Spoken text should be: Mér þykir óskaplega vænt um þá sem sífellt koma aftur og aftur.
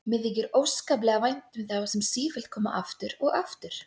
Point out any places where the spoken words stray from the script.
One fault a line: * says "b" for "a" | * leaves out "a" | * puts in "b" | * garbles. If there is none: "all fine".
all fine